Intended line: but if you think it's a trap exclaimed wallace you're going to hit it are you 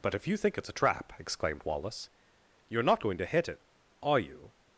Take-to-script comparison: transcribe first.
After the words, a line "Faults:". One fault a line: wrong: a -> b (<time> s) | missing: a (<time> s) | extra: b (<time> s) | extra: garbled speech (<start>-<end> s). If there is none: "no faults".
but if you think it's a trap exclaimed wallace you're not going to hit it are you
Faults:
extra: not (2.8 s)